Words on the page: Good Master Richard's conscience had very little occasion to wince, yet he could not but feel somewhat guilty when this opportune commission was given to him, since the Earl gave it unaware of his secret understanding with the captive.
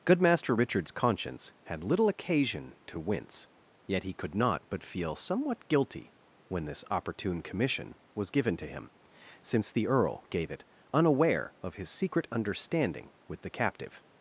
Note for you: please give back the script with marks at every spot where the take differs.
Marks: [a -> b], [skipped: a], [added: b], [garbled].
Good Master Richard's conscience had [skipped: very] little occasion to wince, yet he could not but feel somewhat guilty when this opportune commission was given to him, since the Earl gave it unaware of his secret understanding with the captive.